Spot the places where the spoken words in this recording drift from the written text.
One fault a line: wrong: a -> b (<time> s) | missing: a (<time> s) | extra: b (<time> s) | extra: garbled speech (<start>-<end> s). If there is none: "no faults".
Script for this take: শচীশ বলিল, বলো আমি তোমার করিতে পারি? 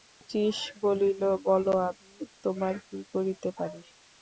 extra: কী (2.9 s)